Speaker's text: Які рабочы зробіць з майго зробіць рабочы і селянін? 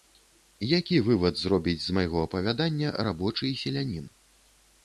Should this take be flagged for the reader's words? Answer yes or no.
yes